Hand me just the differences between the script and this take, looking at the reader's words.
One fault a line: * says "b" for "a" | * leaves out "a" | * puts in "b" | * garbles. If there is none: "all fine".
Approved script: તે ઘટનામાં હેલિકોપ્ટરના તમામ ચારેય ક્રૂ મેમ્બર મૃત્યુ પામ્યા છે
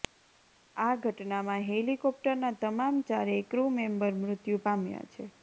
* says "આ" for "તે"